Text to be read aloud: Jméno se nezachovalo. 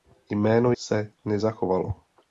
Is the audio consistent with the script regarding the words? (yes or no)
yes